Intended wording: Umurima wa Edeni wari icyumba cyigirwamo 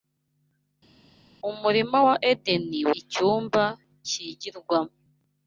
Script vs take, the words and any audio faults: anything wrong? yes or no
yes